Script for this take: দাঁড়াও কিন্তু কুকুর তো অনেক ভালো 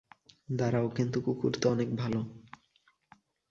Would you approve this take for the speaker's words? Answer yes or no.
yes